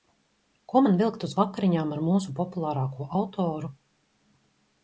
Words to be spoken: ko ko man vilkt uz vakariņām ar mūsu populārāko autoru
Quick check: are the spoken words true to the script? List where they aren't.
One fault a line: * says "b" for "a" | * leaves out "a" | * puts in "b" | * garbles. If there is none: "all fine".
* leaves out "ko"